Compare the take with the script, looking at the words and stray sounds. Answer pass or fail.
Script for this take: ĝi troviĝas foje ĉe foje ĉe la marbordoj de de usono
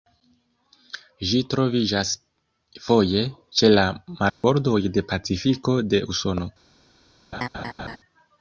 fail